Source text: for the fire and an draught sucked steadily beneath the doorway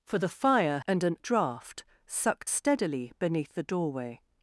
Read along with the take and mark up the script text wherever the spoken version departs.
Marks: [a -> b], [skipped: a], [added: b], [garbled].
for the fire and an draught sucked steadily beneath the doorway